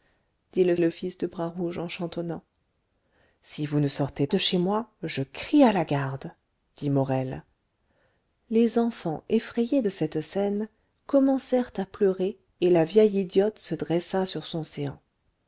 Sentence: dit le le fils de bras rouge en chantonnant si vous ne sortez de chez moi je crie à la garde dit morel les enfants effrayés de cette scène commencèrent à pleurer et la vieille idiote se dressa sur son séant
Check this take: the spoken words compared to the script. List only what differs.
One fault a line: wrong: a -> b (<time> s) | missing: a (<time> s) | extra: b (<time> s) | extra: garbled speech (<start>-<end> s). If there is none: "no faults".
no faults